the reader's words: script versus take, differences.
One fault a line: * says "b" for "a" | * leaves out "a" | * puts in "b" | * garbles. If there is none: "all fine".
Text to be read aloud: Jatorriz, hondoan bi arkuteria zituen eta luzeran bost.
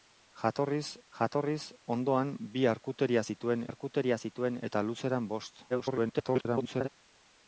* puts in "jatorriz"
* puts in "arkuteria zituen"
* garbles